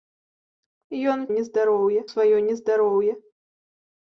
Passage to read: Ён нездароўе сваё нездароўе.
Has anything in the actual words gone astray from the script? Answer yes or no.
no